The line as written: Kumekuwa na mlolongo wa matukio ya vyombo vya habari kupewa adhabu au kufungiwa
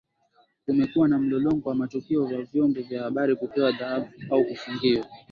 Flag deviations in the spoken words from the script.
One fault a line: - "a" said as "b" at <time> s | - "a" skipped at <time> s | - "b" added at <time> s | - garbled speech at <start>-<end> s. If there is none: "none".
none